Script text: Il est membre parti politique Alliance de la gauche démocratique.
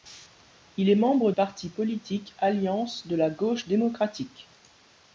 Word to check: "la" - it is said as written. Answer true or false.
true